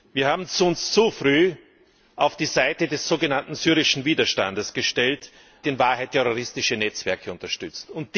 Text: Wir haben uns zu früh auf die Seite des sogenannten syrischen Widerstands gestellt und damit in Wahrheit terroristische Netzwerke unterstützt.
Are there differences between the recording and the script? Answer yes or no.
yes